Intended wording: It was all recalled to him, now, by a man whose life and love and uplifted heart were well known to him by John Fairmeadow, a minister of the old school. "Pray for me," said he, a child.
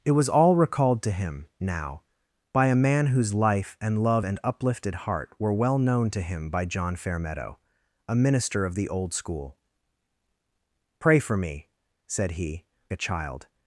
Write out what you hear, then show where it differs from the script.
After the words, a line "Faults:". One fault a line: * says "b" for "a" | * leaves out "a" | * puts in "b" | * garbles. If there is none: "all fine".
It was all recalled to him, now, by a man whose life and love and uplifted heart were well known to him by John Fairmeadow, a minister of the old school. "Pray for me," said he, a child.
Faults:
all fine